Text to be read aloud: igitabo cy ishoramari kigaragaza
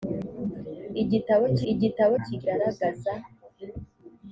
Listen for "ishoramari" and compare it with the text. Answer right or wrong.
wrong